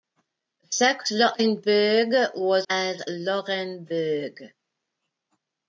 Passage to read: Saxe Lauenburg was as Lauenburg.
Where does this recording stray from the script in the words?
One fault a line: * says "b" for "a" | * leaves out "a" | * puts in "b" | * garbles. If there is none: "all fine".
all fine